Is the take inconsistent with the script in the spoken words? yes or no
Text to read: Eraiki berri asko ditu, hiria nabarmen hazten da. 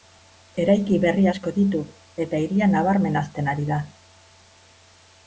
yes